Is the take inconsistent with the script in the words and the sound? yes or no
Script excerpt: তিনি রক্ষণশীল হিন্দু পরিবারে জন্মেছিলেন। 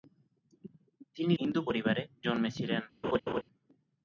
yes